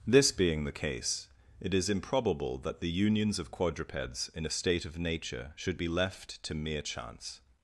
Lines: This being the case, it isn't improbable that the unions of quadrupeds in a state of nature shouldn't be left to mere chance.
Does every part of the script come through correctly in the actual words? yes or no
no